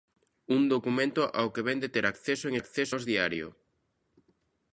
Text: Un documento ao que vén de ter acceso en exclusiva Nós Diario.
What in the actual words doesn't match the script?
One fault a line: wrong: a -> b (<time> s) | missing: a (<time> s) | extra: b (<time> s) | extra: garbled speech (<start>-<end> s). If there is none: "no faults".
wrong: exclusiva -> acceso (2.6 s)